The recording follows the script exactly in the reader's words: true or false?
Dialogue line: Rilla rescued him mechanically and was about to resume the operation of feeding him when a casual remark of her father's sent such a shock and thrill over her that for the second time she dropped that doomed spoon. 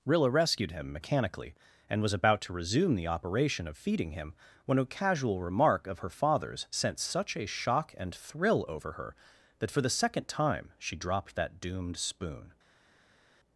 true